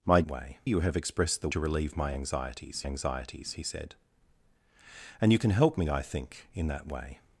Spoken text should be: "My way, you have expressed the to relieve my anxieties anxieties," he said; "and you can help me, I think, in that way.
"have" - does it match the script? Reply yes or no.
yes